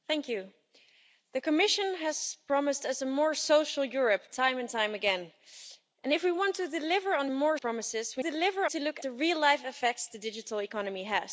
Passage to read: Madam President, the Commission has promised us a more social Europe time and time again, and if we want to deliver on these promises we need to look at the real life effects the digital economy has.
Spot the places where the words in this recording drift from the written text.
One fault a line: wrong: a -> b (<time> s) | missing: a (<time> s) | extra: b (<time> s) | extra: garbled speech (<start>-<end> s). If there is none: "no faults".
wrong: these -> more (7.3 s)
wrong: need -> deliver (8.2 s)
missing: at (9.0 s)